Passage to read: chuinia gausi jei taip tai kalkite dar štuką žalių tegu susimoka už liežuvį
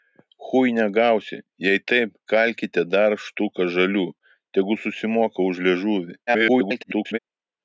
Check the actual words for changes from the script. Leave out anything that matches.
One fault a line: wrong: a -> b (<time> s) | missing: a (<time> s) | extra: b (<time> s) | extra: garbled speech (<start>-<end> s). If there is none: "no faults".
missing: tai (2.1 s)
extra: garbled speech (6.3-7.2 s)